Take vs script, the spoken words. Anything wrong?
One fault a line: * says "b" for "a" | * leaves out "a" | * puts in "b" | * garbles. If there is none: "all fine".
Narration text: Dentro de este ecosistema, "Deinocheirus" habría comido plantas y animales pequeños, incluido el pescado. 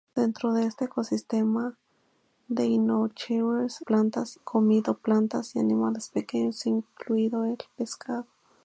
* says "plantas" for "habría"